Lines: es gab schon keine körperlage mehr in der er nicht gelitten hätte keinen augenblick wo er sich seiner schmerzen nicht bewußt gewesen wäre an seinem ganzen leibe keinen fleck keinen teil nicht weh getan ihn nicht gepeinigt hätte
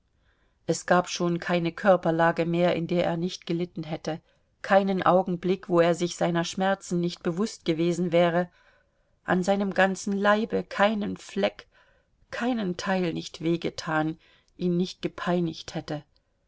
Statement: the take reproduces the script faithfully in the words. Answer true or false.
true